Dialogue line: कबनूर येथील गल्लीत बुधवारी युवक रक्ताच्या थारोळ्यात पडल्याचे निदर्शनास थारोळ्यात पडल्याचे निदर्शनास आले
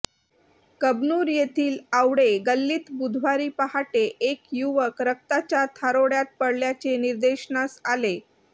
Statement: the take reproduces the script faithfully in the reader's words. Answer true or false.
false